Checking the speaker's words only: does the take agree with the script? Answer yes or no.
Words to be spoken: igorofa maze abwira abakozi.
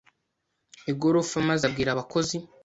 yes